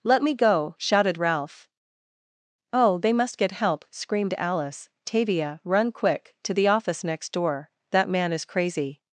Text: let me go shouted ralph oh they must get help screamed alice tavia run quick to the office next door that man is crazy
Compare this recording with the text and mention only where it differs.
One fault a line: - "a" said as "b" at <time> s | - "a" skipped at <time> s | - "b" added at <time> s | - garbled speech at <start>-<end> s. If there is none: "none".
none